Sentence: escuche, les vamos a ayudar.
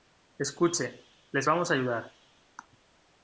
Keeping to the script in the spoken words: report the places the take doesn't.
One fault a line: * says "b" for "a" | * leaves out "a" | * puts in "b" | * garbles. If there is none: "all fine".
all fine